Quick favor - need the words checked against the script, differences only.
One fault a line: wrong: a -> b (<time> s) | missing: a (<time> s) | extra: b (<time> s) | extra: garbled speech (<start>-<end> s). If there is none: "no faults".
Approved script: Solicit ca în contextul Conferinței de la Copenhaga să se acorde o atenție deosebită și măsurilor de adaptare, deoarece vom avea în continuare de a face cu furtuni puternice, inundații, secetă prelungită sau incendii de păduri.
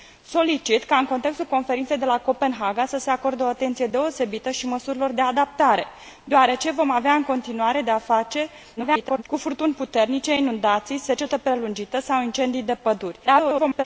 extra: garbled speech (8.8-9.2 s)
extra: garbled speech (13.3-13.8 s)